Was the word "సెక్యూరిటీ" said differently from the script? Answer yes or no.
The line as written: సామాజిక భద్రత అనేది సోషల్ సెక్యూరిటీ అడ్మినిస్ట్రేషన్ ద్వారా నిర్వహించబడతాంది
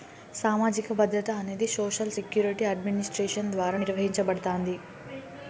no